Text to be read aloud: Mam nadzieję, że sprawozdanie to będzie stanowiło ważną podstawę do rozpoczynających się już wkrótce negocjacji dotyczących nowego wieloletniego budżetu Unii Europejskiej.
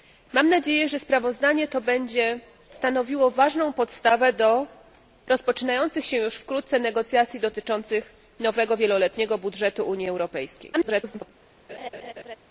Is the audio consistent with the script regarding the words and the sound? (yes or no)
no